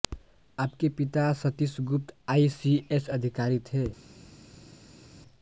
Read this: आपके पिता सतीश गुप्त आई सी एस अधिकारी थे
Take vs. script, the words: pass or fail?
pass